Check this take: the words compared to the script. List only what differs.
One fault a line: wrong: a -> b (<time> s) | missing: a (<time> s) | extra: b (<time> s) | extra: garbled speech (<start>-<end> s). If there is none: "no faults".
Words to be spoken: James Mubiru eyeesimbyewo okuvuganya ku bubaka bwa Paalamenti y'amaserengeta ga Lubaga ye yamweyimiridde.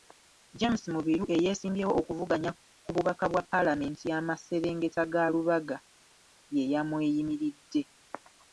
no faults